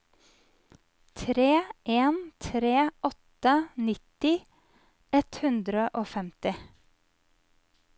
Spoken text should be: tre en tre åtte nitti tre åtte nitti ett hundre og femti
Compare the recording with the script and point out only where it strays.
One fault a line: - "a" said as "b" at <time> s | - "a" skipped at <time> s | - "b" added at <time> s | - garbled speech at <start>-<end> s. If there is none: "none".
- "tre åtte nitti" skipped at 4.3 s